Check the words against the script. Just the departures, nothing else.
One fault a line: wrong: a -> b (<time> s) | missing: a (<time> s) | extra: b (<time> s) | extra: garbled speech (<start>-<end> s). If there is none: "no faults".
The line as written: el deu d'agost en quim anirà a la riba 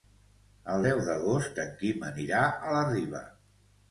no faults